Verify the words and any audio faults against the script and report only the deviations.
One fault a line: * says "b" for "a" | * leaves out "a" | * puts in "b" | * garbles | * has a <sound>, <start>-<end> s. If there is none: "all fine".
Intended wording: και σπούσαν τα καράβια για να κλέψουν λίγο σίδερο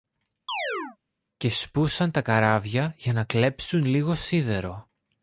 * has a chirp, 0.5-1.0 s